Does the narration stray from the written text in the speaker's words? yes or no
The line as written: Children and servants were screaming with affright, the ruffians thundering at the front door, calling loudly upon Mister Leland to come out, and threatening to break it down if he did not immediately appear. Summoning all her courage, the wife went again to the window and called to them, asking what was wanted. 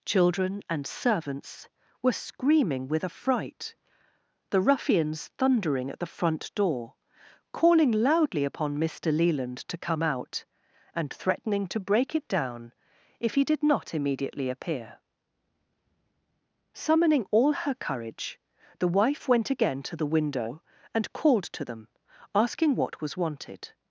no